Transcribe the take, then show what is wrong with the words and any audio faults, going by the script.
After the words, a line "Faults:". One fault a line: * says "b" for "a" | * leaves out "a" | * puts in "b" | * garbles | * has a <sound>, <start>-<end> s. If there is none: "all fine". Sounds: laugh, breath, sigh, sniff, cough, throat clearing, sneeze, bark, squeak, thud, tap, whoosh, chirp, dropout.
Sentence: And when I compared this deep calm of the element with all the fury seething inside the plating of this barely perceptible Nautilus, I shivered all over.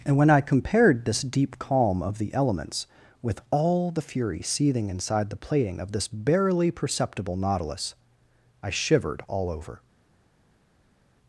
And when I compared this deep calm of the elements with all the fury seething inside the plating of this barely perceptible Nautilus, I shivered all over.
Faults:
* says "elements" for "element"